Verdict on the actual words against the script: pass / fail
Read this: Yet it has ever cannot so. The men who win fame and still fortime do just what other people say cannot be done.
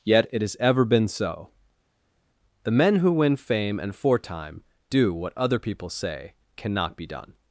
fail